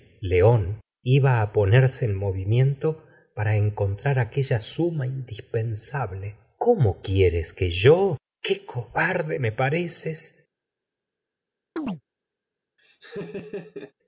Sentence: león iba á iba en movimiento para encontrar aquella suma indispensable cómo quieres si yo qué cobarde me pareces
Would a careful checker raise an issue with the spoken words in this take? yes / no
yes